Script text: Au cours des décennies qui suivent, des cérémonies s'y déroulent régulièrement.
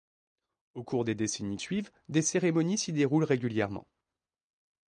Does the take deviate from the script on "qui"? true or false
true